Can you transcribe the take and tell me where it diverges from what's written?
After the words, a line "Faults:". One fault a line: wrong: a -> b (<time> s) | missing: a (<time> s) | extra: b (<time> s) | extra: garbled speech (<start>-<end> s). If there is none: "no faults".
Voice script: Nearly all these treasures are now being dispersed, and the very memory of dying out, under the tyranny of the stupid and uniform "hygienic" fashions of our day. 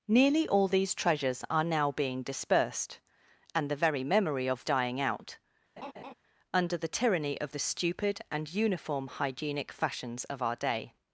Nearly all these treasures are now being dispersed, and the very memory of dying out, under the tyranny of the stupid and uniform "hygienic" fashions of our day.
Faults:
no faults